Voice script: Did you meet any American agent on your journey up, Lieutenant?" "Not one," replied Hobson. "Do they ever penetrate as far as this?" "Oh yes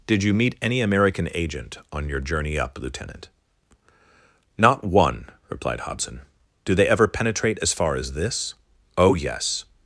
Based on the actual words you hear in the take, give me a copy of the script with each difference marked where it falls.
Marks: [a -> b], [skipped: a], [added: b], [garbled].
Did you meet any American agent on your journey up, Lieutenant?" "Not one," replied Hobson. "Do they ever penetrate as far as this?" "Oh yes